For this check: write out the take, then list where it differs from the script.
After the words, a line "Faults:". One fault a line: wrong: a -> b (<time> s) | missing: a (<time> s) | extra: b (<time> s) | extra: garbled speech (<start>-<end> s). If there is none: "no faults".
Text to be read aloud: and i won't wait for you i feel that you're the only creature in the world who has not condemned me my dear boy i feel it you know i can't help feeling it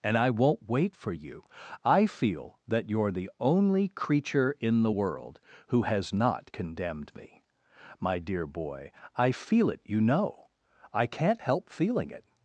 and i won't wait for you i feel that you're the only creature in the world who has not condemned me my dear boy i feel it you know i can't help feeling it
Faults:
no faults